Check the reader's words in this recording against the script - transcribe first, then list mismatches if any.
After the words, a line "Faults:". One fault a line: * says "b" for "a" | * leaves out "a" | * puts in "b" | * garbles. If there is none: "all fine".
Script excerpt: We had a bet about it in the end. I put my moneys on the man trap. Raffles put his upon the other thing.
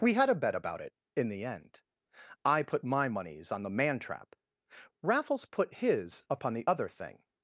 We had a bet about it in the end. I put my moneys on the man trap. Raffles put his upon the other thing.
Faults:
all fine